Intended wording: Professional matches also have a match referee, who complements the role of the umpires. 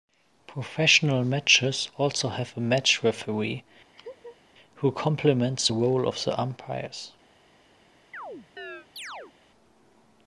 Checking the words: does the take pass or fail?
pass